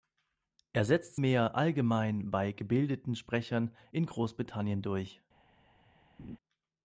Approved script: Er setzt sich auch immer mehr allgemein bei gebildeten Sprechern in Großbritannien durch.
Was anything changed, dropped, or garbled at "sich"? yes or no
yes